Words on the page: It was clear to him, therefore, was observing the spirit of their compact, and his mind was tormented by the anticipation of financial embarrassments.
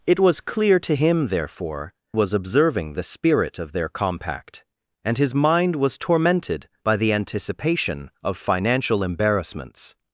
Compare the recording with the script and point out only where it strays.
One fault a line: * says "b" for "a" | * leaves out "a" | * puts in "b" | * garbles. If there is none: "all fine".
all fine